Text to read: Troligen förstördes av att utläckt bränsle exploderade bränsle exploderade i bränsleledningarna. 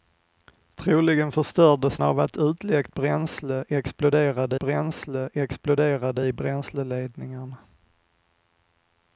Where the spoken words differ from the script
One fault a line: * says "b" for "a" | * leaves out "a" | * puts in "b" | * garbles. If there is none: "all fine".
all fine